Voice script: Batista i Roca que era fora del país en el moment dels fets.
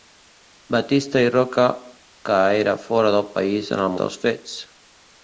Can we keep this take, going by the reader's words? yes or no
no